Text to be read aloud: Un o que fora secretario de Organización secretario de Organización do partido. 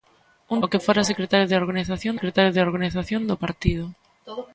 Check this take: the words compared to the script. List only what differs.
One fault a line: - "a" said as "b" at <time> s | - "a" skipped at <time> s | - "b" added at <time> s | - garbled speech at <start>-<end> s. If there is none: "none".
none